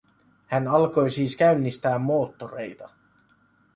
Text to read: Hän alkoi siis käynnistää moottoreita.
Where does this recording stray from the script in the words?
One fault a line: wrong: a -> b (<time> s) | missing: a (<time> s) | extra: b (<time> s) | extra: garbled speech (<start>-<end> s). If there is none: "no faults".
no faults